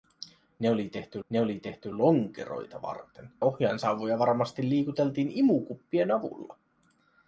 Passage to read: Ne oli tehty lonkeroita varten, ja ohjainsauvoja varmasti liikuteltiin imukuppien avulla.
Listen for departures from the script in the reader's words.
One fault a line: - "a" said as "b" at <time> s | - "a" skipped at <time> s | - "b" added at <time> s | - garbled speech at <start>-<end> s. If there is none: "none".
- "ne oli tehty" added at 1.3 s
- "ja" skipped at 3.3 s